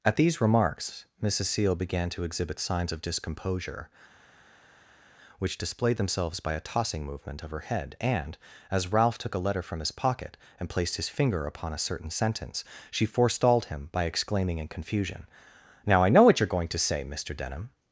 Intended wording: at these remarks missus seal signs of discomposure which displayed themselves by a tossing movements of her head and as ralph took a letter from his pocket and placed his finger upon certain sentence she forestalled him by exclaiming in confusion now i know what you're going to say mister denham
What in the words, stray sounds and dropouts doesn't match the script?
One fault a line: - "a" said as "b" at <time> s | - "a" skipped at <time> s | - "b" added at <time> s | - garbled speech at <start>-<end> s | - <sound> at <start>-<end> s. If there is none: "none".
- "began to exhibit" added at 1.8 s
- "movements" said as "movement" at 7.0 s
- "a" added at 11.7 s